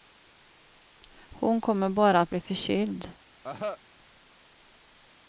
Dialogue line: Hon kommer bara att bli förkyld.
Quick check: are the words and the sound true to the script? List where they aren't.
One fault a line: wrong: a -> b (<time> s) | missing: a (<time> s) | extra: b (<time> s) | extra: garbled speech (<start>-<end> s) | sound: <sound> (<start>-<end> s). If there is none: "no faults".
sound: cough (3.4-3.8 s)